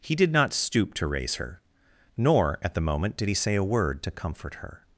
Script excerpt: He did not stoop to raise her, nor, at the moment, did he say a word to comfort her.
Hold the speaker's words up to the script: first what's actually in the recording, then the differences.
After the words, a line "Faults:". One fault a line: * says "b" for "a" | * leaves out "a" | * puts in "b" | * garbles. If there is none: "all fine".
He did not stoop to raise her, nor, at the moment, did he say a word to comfort her.
Faults:
all fine